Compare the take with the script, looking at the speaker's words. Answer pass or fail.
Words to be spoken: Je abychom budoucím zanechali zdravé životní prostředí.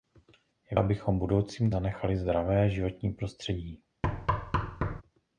pass